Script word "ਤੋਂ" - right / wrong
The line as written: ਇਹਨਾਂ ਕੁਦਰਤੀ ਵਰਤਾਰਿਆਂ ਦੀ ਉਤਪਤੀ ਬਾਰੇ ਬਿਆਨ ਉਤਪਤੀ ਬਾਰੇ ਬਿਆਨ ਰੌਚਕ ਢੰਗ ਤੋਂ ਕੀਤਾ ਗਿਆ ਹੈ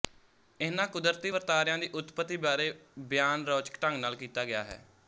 wrong